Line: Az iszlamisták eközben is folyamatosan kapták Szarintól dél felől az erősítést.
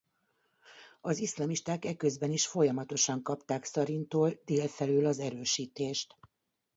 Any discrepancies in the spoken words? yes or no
no